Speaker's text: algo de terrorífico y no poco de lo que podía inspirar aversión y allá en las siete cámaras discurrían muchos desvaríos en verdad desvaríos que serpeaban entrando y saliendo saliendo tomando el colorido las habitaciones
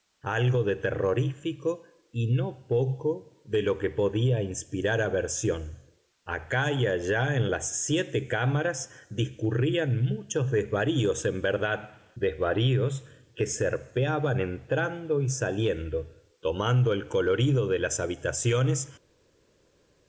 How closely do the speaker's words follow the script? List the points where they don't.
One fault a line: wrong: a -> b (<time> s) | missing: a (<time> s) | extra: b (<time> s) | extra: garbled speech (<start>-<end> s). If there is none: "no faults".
extra: acá (6.2 s)
missing: saliendo (16.1 s)
extra: de (17.7 s)